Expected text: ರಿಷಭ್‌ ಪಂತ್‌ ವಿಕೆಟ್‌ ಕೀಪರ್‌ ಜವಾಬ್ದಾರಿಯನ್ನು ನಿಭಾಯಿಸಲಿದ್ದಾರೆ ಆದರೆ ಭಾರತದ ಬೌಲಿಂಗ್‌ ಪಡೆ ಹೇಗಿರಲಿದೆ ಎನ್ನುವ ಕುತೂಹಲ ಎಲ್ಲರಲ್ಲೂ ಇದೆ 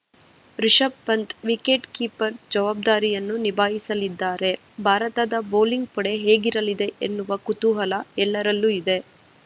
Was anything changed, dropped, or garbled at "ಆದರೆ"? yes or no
yes